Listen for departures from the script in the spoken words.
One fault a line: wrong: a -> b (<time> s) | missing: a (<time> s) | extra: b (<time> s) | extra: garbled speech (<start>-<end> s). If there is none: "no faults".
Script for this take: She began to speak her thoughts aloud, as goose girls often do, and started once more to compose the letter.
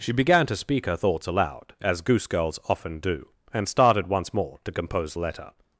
missing: the (5.1 s)